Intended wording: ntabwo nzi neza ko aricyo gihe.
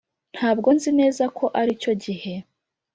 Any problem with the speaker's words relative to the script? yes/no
no